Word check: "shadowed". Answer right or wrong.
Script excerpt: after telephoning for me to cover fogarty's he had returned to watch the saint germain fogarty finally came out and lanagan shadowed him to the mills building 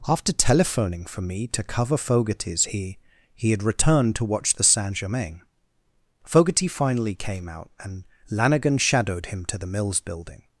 right